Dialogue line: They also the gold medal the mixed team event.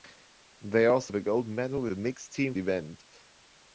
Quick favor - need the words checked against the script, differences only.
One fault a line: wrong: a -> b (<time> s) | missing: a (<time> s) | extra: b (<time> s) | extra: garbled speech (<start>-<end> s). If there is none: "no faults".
no faults